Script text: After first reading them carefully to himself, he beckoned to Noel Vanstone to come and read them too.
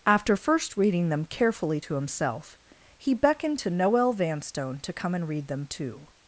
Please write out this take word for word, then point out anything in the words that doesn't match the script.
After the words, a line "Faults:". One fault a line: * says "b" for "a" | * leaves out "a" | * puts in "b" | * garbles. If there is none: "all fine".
After first reading them carefully to himself, he beckoned to Noel Vanstone to come and read them too.
Faults:
all fine